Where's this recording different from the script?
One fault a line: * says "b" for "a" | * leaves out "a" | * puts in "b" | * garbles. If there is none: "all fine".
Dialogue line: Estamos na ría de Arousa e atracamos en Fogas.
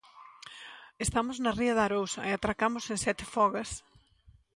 * puts in "Sete"